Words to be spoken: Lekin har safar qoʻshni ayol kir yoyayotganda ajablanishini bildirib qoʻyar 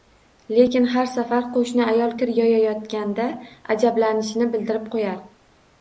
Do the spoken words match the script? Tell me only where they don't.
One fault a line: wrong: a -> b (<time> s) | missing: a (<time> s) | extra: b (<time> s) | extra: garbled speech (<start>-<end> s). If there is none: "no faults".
no faults